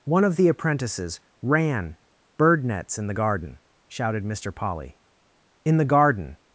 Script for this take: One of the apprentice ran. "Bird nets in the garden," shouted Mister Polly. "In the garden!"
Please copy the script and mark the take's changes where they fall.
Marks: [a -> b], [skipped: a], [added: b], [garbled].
One of the [apprentice -> apprentices] ran. "Bird nets in the garden," shouted Mister Polly. "In the garden!"